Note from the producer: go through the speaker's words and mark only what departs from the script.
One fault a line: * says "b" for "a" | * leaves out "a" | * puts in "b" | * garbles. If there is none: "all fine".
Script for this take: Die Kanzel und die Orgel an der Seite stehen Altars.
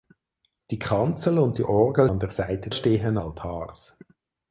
all fine